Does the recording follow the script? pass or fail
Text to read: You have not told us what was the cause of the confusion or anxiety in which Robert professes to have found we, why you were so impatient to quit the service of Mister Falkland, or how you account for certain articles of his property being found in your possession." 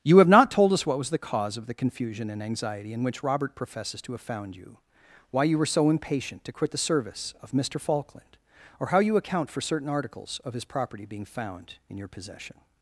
fail